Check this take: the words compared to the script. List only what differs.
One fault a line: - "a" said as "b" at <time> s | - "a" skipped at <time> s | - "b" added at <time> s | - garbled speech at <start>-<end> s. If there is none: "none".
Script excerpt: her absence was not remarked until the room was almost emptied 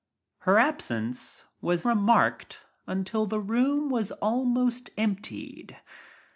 - "not" skipped at 1.9 s